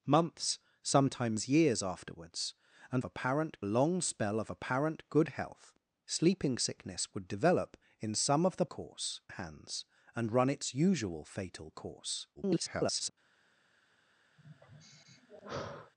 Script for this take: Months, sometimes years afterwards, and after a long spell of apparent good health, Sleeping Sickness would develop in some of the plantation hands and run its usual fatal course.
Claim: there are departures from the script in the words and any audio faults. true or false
true